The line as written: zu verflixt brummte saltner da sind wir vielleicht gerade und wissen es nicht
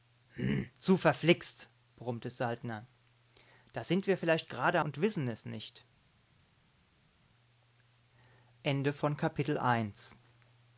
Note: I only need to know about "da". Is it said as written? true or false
true